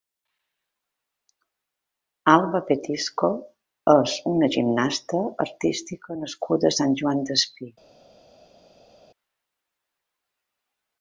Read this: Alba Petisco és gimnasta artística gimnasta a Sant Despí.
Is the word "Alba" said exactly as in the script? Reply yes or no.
yes